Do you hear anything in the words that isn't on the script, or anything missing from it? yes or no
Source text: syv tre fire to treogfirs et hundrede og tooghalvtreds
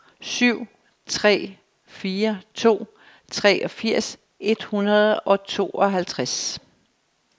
no